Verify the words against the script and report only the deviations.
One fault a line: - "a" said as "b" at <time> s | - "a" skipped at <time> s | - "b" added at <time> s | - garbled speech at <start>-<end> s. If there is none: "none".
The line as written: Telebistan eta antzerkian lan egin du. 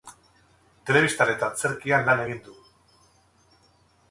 none